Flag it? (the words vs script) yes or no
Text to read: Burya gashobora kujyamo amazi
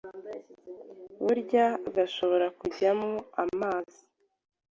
no